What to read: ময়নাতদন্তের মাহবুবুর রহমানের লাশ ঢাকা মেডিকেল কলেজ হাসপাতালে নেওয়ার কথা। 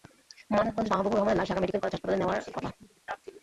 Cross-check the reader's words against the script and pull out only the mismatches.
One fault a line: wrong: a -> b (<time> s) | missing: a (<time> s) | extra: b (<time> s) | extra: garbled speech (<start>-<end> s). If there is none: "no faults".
no faults